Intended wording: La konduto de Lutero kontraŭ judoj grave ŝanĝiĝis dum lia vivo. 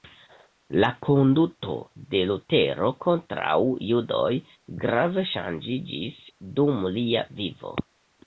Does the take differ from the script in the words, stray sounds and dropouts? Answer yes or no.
no